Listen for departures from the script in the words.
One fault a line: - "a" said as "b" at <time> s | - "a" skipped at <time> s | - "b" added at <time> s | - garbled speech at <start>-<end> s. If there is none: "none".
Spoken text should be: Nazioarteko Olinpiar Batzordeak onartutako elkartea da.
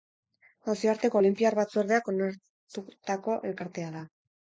none